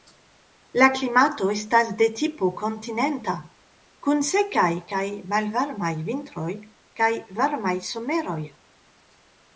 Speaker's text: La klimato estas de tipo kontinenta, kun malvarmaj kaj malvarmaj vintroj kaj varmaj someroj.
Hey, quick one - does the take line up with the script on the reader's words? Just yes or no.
no